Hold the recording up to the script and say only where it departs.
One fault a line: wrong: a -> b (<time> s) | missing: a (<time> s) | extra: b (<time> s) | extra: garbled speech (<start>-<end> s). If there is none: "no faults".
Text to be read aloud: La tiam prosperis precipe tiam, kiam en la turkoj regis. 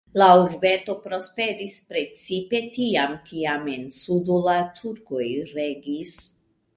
wrong: tiam -> urbeto (0.4 s)
extra: sudo (4.0 s)